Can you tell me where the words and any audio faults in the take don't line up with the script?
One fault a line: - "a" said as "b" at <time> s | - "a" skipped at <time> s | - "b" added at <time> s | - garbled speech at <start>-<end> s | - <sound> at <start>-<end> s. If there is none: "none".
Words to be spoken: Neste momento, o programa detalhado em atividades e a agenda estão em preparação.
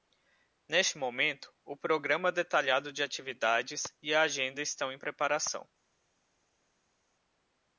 - "em" said as "de" at 2.9 s